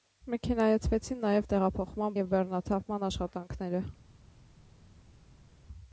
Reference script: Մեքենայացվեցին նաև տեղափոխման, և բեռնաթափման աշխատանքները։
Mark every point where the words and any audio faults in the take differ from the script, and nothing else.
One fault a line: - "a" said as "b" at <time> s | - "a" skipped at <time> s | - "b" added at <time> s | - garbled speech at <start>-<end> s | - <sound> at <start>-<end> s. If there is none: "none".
none